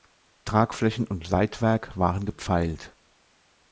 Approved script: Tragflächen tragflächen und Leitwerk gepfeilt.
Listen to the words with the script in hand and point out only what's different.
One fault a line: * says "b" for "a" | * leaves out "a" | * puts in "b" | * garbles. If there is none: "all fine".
* leaves out "tragflächen"
* puts in "waren"